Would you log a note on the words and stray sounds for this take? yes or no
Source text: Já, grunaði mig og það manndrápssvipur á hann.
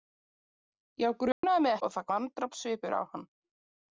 yes